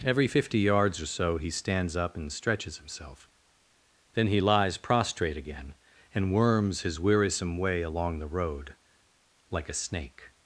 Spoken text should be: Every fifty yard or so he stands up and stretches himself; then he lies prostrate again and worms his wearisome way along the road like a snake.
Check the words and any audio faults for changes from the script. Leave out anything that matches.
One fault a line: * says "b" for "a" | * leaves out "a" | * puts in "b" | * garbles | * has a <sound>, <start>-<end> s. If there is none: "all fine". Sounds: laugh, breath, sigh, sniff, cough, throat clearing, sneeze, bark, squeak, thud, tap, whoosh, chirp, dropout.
* says "yards" for "yard"